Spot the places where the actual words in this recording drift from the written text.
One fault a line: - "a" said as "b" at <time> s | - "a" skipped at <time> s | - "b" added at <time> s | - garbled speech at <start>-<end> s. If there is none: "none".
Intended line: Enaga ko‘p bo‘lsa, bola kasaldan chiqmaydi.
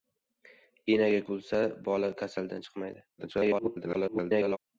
- "ko‘p" skipped at 1.2 s
- garbled speech at 3.2-4.6 s